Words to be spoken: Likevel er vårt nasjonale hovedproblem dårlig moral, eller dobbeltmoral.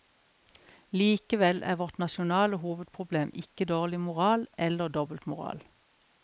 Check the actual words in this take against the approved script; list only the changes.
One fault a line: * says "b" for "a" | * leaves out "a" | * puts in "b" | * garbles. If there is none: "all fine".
* puts in "ikke"